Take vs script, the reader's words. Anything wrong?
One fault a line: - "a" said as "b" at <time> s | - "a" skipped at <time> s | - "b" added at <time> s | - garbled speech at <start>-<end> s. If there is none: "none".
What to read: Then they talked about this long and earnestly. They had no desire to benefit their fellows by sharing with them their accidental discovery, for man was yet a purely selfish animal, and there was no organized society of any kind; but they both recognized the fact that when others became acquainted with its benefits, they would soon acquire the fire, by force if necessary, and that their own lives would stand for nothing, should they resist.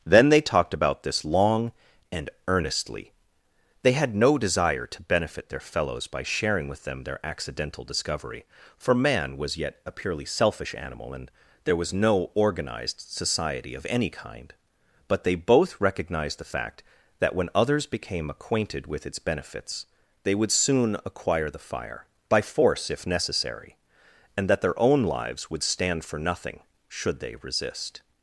none